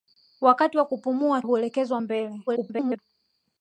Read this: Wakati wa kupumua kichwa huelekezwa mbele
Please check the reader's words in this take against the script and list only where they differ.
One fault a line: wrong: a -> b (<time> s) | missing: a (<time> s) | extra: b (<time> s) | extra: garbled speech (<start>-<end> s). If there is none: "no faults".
missing: kichwa (1.4 s)
extra: garbled speech (2.5-3.0 s)